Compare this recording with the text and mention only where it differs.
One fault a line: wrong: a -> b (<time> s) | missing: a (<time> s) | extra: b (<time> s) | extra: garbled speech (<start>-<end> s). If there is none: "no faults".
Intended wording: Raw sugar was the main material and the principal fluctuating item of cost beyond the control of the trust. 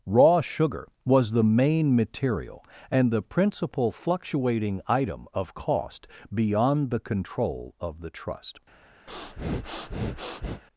no faults